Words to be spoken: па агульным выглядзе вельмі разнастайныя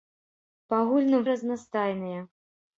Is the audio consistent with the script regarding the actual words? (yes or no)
no